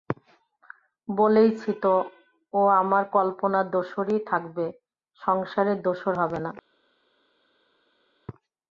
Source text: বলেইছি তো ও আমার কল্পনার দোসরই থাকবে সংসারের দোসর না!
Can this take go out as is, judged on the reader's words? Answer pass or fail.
fail